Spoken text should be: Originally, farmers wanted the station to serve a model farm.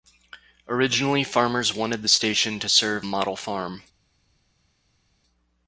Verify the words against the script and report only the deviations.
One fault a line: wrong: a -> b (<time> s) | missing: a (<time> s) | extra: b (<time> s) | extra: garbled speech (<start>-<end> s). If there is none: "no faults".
no faults